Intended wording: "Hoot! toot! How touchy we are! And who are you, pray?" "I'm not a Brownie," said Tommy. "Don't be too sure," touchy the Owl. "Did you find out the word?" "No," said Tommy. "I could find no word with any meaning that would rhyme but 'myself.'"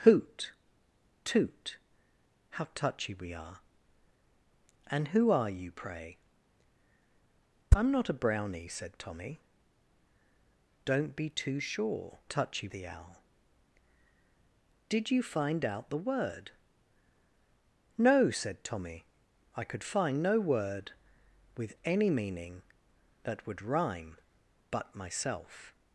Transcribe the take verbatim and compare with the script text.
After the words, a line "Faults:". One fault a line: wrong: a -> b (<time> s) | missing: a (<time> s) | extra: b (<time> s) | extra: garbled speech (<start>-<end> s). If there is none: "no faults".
"Hoot! toot! How touchy we are! And who are you, pray?" "I'm not a Brownie," said Tommy. "Don't be too sure," touchy the Owl. "Did you find out the word?" "No," said Tommy. "I could find no word with any meaning that would rhyme but 'myself.'"
Faults:
no faults